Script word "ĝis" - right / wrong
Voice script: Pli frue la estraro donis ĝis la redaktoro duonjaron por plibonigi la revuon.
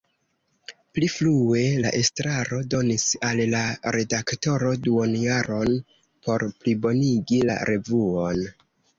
wrong